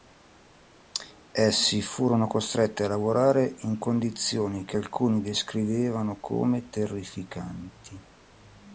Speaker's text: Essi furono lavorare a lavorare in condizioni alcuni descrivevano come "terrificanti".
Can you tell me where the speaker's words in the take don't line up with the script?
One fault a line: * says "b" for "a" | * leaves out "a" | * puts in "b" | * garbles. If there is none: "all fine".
* says "costretti" for "lavorare"
* puts in "che"